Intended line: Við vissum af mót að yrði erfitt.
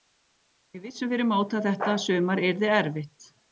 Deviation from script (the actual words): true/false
true